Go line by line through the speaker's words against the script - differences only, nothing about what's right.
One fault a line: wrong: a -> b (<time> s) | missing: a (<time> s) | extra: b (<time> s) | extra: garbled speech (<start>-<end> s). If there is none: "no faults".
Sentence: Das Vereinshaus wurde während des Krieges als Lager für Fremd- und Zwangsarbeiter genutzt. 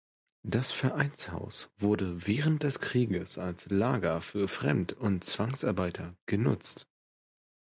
no faults